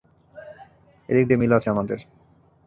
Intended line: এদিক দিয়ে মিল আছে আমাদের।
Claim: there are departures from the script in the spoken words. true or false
false